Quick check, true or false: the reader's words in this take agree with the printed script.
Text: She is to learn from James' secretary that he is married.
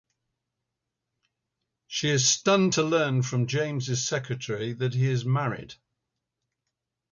false